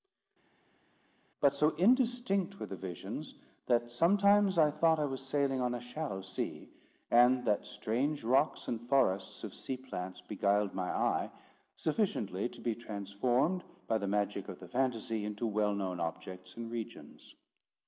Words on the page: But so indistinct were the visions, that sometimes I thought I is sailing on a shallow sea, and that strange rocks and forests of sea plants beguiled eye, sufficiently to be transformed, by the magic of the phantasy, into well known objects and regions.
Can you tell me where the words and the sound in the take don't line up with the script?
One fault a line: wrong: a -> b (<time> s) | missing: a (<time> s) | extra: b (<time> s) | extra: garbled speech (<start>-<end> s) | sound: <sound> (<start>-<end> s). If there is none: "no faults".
wrong: is -> was (5.0 s)
extra: my (10.7 s)